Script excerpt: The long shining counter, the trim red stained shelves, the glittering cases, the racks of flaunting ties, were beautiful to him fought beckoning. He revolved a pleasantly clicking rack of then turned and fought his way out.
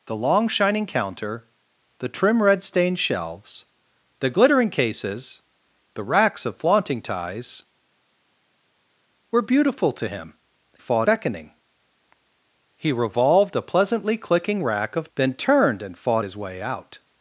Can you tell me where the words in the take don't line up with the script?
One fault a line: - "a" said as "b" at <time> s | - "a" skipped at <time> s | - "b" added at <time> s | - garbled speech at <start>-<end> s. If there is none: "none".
none